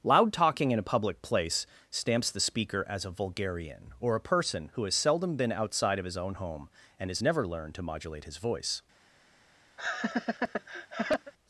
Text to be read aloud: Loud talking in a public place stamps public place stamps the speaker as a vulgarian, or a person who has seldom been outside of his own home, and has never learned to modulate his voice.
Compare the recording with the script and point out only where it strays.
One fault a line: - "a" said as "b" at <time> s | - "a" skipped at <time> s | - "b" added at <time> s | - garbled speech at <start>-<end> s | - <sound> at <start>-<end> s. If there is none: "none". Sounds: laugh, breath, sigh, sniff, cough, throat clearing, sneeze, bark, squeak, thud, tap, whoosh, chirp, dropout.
- "public place stamps" skipped at 2.3 s
- laugh at 9.8-11.3 s